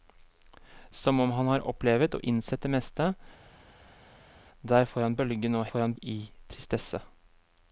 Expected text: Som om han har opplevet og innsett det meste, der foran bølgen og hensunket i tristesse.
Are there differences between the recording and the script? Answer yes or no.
yes